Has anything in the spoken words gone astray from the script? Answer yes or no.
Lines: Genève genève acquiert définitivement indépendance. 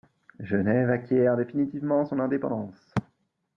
yes